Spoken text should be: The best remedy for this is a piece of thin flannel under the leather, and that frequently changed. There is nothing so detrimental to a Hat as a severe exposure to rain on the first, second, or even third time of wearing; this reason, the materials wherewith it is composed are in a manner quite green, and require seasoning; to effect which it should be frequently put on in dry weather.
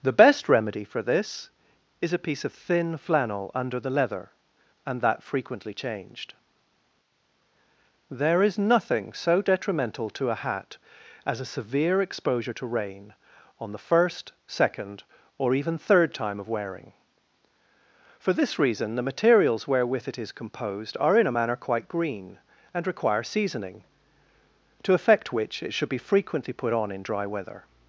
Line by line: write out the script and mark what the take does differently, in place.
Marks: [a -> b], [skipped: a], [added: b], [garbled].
The best remedy for this is a piece of thin flannel under the leather, and that frequently changed. There is nothing so detrimental to a Hat as a severe exposure to rain on the first, second, or even third time of wearing; [added: for] this reason, the materials wherewith it is composed are in a manner quite green, and require seasoning; to effect which it should be frequently put on in dry weather.